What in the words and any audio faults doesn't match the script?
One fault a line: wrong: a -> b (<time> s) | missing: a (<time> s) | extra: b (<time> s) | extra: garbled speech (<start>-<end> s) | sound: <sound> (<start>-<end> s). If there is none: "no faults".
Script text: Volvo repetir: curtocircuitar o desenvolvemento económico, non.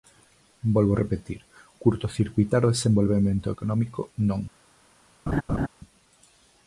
sound: laugh (5.3-5.7 s)